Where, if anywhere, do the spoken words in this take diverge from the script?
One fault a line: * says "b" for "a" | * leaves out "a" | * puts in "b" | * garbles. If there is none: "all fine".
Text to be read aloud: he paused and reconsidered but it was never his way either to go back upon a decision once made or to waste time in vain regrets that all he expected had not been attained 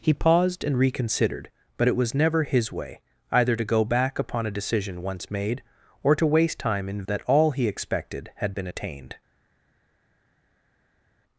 * leaves out "vain regrets"
* leaves out "not"